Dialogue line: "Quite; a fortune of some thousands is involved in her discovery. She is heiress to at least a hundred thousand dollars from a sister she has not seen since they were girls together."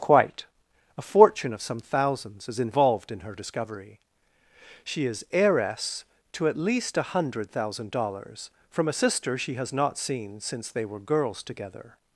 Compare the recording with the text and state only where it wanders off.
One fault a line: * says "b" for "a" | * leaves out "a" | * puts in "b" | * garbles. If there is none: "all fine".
all fine